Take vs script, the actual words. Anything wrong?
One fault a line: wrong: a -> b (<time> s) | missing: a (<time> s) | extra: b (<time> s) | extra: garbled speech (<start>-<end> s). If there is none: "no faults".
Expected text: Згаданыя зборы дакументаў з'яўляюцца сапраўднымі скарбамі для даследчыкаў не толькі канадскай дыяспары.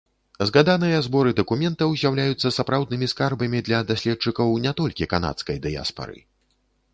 no faults